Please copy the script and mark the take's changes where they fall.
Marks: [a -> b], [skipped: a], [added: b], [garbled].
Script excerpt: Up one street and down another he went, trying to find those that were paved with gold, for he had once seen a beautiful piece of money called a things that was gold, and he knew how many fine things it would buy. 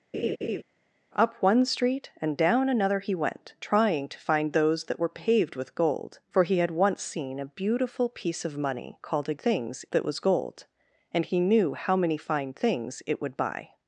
Up one street and down another he went, trying to find those that were paved with gold, for he had once seen a beautiful piece of money called a things that was gold, and he knew how many fine things it would buy.